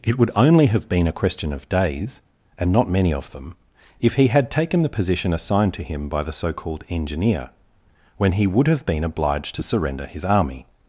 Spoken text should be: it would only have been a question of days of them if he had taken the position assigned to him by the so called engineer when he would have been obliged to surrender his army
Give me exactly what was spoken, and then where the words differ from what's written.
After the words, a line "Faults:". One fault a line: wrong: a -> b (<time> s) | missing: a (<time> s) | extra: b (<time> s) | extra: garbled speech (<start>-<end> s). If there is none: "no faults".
it would only have been a question of days and not many of them if he had taken the position assigned to him by the so called engineer when he would have been obliged to surrender his army
Faults:
extra: and not many (2.6 s)